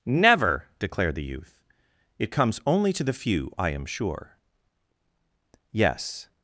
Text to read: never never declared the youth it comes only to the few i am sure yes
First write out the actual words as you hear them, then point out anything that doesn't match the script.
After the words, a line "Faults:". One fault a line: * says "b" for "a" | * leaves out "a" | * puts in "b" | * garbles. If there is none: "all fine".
never declared the youth it comes only to the few i am sure yes
Faults:
* leaves out "never"